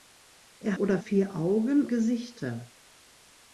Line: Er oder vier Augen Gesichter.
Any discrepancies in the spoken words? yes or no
no